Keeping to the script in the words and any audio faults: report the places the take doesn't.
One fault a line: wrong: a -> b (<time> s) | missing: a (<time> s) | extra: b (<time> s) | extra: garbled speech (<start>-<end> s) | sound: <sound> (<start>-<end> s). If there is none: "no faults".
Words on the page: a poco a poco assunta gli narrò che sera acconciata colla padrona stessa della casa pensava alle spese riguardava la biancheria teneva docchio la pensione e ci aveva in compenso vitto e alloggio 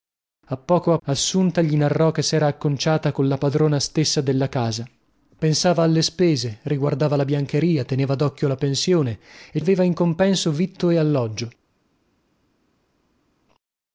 missing: poco (1.0 s)
missing: ci (9.6 s)